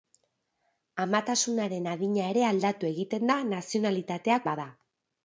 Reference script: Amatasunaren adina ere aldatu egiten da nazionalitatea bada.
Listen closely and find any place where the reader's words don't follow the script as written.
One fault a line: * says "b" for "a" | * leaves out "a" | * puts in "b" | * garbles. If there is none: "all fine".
all fine